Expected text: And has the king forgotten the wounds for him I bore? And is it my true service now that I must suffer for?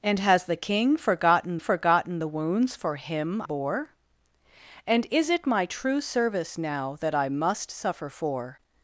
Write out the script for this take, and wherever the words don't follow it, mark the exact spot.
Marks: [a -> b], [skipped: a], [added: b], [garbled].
And has the king forgotten [added: forgotten] the wounds for him [skipped: I] bore? And is it my true service now that I must suffer for?